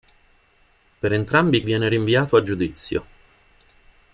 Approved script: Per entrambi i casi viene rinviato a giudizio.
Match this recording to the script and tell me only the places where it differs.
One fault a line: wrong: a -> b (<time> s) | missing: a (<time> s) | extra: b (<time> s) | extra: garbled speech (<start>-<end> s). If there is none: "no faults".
missing: casi (1.6 s)